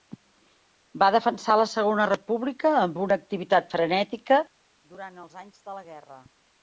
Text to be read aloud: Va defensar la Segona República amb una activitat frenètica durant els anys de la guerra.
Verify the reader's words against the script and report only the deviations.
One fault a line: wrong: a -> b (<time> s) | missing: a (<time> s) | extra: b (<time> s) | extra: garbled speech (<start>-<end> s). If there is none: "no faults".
no faults